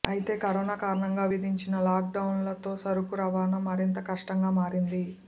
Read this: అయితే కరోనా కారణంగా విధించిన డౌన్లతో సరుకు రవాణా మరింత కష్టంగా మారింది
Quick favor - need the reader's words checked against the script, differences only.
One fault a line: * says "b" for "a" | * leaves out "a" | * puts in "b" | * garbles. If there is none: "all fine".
* puts in "లాక్"